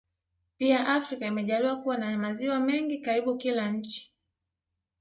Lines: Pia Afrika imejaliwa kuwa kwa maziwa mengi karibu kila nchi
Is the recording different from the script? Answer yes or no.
yes